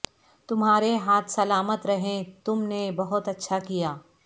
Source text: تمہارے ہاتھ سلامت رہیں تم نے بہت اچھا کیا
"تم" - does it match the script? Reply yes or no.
yes